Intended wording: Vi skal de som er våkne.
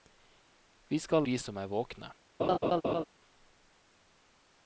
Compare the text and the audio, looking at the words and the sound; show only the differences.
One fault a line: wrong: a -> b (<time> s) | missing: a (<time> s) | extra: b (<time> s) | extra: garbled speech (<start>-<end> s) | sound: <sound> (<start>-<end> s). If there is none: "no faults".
sound: laugh (2.4-3.0 s)